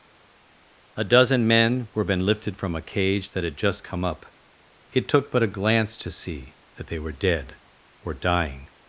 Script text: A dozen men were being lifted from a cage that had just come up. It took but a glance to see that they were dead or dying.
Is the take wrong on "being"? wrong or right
wrong